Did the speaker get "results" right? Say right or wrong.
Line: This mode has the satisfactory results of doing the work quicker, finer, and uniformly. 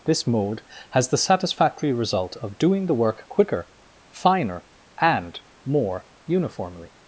wrong